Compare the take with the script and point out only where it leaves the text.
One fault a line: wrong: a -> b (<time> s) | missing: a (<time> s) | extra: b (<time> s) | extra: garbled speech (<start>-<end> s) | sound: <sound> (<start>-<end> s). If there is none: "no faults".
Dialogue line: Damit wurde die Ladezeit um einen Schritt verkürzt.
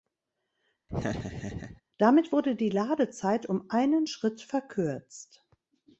sound: laugh (0.9-1.8 s)